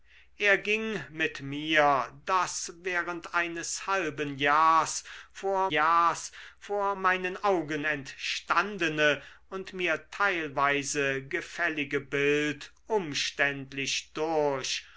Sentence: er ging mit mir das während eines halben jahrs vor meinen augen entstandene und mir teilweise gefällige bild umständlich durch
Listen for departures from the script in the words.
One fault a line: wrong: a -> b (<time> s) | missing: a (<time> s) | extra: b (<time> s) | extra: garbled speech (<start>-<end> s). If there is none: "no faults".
extra: jahrs vor (5.7 s)